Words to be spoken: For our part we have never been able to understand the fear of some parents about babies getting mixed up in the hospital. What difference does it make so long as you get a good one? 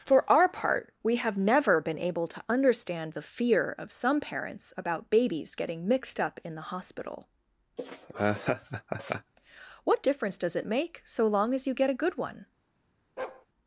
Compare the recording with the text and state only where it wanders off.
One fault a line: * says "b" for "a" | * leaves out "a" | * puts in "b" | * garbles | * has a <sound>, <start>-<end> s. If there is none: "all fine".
* has a laugh, 7.8-9.3 s
* has a bark, 13.2-13.5 s